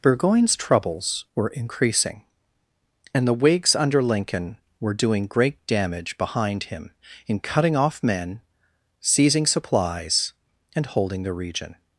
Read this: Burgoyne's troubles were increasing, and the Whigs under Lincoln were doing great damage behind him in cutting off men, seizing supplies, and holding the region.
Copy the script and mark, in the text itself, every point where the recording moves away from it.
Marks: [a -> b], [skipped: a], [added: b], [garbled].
Burgoyne's troubles were increasing, and the Whigs under Lincoln were doing great damage behind him in cutting off men, seizing supplies, and holding the region.